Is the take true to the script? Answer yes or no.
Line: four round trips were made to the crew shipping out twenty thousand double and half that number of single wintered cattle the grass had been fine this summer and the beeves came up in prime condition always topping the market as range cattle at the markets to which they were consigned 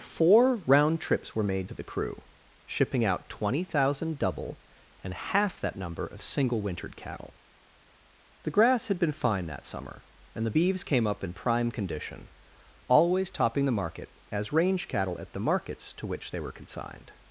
no